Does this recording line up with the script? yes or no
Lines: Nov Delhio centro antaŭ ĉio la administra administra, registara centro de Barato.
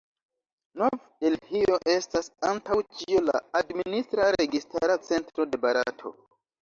no